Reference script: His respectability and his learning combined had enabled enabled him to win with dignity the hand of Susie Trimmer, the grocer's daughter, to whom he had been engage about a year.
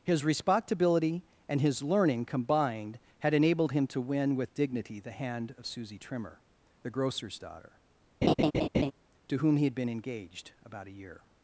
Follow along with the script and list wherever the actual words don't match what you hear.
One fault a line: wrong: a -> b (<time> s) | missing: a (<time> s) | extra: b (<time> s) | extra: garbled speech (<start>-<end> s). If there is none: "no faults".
missing: enabled (3.7 s)
wrong: engage -> engaged (9.9 s)